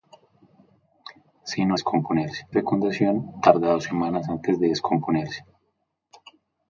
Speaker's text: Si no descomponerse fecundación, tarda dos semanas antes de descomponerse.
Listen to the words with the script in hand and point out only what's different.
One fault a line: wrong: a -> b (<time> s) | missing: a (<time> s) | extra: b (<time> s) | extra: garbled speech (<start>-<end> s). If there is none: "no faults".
no faults